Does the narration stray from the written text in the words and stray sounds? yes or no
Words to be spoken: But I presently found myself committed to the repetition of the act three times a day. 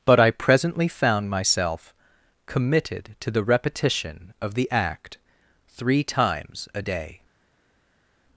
no